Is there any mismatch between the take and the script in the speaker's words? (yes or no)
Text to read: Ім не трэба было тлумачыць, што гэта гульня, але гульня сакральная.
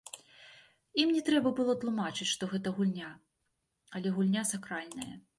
no